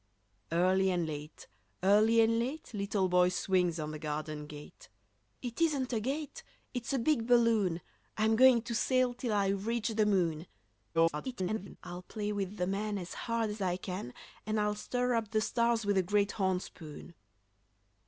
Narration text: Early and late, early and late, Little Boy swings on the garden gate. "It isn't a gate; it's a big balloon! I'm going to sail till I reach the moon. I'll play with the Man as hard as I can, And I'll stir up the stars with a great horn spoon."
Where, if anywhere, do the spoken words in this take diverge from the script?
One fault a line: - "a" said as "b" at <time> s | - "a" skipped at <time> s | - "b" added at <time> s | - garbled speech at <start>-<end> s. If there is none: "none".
- garbled speech at 10.9-11.8 s